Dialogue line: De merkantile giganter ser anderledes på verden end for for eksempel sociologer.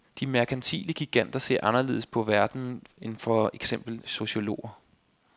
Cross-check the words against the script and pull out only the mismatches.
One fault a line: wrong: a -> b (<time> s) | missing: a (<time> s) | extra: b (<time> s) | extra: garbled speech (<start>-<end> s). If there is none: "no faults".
missing: for (3.5 s)